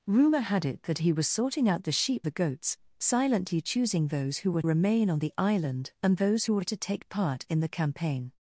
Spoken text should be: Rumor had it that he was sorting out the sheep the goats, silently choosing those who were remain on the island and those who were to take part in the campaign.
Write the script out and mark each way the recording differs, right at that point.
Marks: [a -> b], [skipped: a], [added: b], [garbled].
Rumor had it that he was sorting out the sheep the goats, silently choosing those who were remain on the island and those who were to take part in the campaign.